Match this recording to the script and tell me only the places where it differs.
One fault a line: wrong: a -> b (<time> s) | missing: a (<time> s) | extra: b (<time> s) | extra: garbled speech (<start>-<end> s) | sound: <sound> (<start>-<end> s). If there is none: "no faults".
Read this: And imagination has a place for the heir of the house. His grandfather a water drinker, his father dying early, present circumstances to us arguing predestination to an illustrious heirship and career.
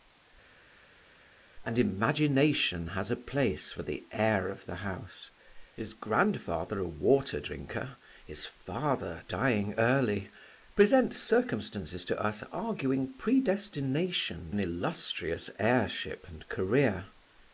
missing: to (14.5 s)